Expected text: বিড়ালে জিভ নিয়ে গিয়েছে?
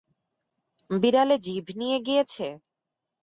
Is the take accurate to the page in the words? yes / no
yes